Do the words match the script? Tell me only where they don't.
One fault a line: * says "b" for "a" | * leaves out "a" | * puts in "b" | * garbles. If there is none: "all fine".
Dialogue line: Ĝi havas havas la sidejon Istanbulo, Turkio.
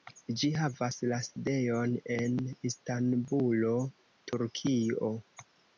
* leaves out "havas"
* puts in "en"